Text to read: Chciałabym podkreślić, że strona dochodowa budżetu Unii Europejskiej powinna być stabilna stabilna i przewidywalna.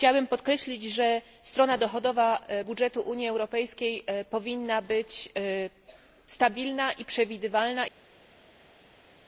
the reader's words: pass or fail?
fail